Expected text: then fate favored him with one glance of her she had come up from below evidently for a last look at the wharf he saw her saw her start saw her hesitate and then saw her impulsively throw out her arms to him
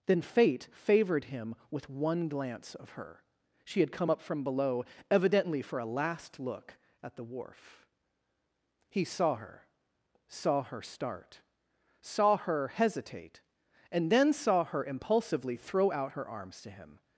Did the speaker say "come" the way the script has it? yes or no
yes